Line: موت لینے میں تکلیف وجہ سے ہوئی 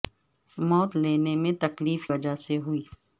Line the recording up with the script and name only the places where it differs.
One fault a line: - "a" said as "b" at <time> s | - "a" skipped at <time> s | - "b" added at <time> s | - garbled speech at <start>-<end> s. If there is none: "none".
none